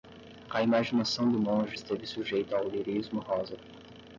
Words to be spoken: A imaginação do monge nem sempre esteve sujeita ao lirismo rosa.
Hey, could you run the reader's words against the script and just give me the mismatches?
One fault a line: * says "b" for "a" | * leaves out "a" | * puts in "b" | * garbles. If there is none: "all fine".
* leaves out "nem sempre"